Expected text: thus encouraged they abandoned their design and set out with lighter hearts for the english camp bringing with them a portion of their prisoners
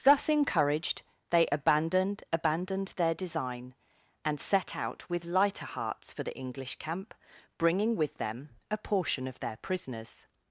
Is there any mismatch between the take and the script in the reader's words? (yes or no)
yes